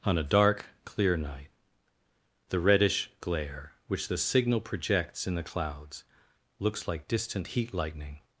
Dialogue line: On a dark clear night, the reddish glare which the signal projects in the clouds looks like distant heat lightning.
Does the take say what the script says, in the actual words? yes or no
yes